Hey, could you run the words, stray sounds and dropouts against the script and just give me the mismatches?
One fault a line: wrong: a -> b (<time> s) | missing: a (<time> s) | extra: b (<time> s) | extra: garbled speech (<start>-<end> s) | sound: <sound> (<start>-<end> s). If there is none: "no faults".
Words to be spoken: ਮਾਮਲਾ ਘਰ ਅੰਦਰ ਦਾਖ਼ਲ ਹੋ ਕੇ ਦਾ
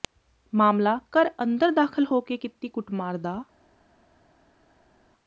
extra: ਕੀਤੀ ਕੁੱਟਮਾਰ (2.4 s)